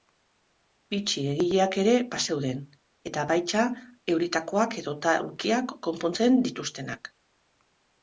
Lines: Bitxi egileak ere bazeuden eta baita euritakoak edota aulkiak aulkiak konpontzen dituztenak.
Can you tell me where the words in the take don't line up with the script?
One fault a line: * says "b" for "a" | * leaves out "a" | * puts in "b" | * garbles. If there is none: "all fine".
* leaves out "aulkiak"